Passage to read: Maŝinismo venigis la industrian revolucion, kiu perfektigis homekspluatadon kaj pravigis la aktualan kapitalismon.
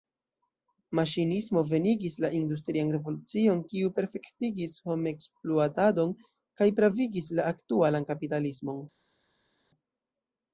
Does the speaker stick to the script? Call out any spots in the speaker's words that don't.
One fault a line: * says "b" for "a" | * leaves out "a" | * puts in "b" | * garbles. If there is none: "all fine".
all fine